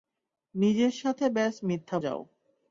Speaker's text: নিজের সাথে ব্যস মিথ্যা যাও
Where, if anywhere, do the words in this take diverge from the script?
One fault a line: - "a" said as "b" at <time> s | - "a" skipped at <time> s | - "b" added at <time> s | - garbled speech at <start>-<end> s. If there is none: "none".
none